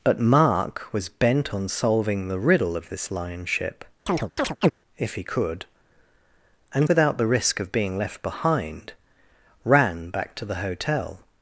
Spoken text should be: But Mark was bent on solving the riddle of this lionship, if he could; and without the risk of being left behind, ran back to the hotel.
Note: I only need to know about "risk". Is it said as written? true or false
true